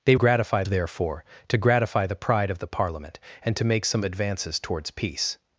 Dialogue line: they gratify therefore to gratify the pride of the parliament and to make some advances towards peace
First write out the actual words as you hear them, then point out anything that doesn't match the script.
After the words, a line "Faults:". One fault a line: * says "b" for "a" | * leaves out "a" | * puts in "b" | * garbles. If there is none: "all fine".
they gratify therefore to gratify the pride of the parliament and to make some advances towards peace
Faults:
all fine